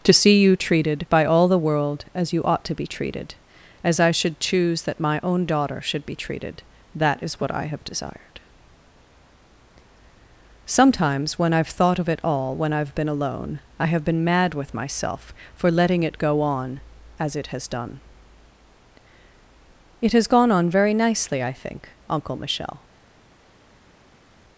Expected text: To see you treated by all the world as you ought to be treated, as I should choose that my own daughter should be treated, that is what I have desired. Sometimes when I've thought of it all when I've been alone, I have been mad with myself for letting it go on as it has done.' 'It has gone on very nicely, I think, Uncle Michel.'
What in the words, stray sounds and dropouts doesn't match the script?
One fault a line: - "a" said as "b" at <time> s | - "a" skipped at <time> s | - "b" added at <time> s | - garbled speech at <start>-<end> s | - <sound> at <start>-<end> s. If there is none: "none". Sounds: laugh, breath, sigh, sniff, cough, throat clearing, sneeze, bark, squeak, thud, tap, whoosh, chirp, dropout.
none